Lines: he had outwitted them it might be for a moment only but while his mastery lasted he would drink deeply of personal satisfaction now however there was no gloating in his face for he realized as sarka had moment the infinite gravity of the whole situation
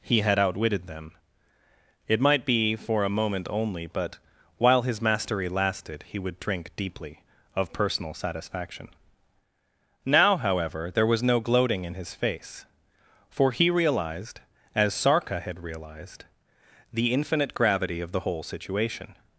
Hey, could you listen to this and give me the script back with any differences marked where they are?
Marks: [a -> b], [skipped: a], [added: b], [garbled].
he had outwitted them it might be for a moment only but while his mastery lasted he would drink deeply of personal satisfaction now however there was no gloating in his face for he realized as sarka had [moment -> realized] the infinite gravity of the whole situation